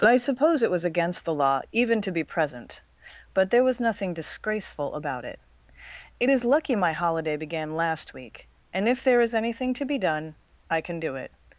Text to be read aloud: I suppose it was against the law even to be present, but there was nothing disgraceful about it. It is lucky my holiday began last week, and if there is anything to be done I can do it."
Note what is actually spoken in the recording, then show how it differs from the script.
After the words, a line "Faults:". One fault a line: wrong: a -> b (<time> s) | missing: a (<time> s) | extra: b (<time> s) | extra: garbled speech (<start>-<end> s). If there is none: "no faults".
I suppose it was against the law even to be present, but there was nothing disgraceful about it. It is lucky my holiday began last week, and if there is anything to be done I can do it."
Faults:
no faults